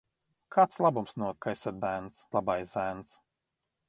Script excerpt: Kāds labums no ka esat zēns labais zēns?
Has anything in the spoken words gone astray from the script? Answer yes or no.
no